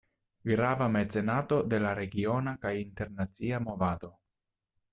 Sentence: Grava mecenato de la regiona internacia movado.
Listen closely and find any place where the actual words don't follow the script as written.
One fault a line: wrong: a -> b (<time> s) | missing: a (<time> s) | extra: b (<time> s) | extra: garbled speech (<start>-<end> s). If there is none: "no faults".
extra: kaj (2.6 s)